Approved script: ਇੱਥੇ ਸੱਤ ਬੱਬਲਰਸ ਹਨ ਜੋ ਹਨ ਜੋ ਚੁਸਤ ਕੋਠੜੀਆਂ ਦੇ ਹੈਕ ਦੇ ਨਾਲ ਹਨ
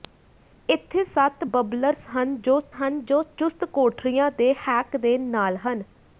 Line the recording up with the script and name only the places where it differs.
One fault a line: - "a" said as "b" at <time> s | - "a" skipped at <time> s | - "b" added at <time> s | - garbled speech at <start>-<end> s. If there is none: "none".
none